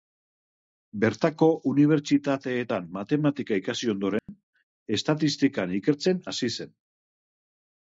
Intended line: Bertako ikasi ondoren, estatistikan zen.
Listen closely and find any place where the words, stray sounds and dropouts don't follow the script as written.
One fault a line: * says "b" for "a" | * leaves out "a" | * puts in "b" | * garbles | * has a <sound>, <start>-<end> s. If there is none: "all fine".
* puts in "unibertsitateetan matematika"
* has a dropout, 4.2-4.3 s
* puts in "ikertzen hasi"